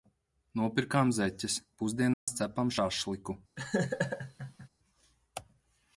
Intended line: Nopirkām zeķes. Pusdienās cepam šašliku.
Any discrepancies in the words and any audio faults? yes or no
yes